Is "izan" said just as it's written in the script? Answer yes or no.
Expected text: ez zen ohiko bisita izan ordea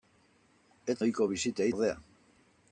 no